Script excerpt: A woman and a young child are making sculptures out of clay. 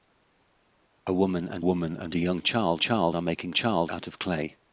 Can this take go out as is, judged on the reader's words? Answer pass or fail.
fail